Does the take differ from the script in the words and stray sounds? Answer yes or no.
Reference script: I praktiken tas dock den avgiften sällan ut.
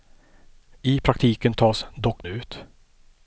yes